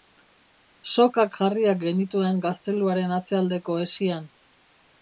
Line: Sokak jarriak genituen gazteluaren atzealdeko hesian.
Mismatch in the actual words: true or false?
false